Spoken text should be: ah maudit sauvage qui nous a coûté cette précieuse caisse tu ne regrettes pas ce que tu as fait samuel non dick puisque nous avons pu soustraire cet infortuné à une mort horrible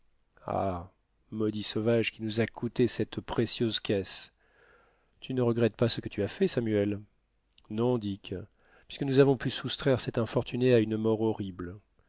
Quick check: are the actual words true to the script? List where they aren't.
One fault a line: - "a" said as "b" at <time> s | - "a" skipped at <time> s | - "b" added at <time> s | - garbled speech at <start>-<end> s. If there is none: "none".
none